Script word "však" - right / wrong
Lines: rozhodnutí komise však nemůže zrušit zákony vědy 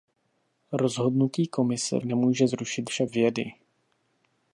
wrong